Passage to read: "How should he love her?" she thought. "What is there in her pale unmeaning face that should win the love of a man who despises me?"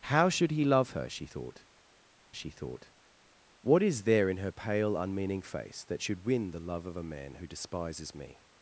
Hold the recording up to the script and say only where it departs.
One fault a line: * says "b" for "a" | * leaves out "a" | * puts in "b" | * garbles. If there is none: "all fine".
* puts in "she thought"